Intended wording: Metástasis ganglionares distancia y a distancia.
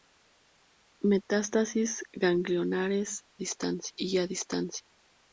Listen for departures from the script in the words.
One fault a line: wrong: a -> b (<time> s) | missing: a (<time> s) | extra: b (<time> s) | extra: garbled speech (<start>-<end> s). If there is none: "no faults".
no faults